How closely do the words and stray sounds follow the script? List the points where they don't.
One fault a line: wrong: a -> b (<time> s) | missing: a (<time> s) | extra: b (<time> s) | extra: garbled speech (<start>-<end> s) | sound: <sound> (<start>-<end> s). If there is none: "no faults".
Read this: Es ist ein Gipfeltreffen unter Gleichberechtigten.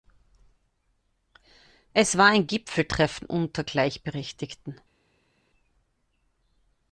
wrong: ist -> war (2.2 s)